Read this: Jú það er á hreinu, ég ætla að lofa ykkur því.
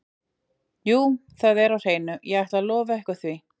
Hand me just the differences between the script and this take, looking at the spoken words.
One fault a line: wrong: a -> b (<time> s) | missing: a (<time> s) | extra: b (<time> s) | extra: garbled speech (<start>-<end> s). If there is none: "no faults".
no faults